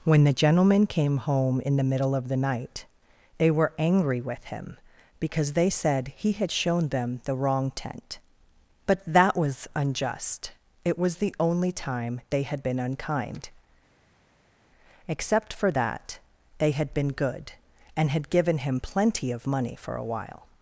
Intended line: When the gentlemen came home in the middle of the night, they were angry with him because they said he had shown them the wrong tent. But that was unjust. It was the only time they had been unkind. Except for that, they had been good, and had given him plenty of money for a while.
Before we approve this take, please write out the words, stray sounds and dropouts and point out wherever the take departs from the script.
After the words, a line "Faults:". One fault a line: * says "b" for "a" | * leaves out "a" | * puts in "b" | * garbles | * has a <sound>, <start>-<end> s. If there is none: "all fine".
When the gentlemen came home in the middle of the night, they were angry with him because they said he had shown them the wrong tent. But that was unjust. It was the only time they had been unkind. Except for that, they had been good, and had given him plenty of money for a while.
Faults:
all fine